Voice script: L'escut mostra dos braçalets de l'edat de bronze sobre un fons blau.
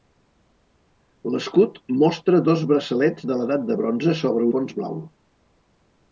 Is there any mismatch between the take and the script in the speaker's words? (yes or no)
yes